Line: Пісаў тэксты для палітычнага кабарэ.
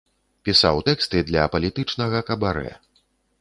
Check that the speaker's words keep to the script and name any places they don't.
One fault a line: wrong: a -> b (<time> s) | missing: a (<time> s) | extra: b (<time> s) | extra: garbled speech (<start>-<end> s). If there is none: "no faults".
no faults